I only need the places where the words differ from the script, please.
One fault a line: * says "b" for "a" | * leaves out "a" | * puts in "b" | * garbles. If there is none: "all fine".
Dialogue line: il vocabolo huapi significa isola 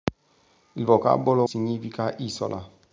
* leaves out "huapi"